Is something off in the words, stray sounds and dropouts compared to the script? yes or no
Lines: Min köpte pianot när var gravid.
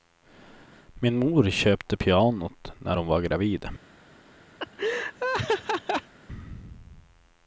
yes